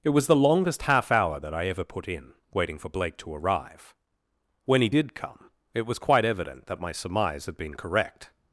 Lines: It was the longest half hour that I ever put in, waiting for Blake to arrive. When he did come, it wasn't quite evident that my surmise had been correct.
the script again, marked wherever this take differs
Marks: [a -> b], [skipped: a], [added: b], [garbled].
It was the longest half hour that I ever put in, waiting for Blake to arrive. When he did come, it [wasn't -> was] quite evident that my surmise had been correct.